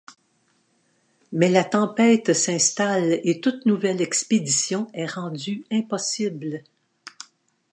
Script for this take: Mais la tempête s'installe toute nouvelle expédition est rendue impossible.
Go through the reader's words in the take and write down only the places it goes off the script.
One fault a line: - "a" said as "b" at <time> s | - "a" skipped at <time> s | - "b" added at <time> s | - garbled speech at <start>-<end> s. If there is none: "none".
- "et" added at 3.2 s